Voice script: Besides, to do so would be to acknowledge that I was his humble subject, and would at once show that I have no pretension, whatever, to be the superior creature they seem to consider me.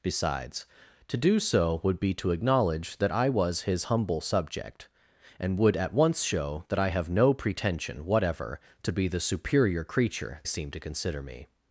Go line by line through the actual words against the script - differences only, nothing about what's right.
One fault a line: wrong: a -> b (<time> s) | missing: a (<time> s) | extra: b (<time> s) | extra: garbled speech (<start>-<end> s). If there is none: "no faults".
missing: they (10.4 s)